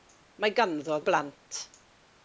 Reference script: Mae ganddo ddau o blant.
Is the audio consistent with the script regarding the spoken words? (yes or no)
no